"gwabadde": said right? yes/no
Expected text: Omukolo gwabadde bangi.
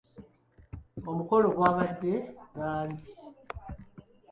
yes